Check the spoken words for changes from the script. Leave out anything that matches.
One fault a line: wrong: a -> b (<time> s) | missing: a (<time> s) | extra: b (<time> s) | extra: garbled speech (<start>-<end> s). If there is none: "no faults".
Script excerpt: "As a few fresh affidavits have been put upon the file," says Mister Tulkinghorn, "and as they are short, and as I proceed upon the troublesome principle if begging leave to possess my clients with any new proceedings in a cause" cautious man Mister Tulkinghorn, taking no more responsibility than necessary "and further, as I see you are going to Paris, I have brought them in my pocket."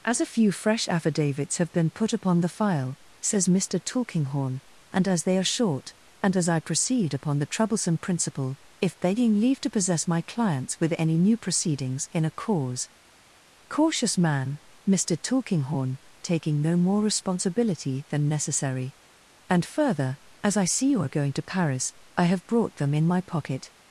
no faults